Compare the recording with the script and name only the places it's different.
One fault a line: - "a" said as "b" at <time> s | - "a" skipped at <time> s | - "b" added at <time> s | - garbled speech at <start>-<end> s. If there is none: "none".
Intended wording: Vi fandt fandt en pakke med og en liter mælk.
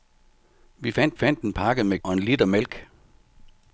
none